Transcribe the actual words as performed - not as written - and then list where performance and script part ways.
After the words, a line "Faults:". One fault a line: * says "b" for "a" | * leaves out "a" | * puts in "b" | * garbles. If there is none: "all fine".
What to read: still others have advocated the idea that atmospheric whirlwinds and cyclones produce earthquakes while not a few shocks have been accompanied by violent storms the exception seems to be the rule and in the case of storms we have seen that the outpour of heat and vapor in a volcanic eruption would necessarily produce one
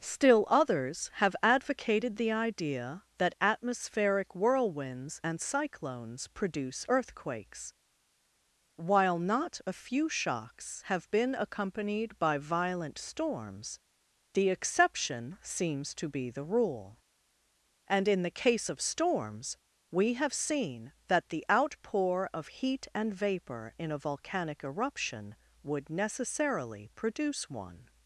still others have advocated the idea that atmospheric whirlwinds and cyclones produce earthquakes while not a few shocks have been accompanied by violent storms the exception seems to be the rule and in the case of storms we have seen that the outpour of heat and vapor in a volcanic eruption would necessarily produce one
Faults:
all fine